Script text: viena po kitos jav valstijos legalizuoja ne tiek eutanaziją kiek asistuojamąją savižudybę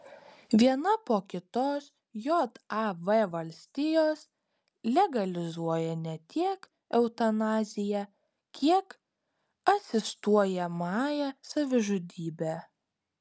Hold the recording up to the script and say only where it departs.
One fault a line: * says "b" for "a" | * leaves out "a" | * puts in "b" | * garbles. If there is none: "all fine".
all fine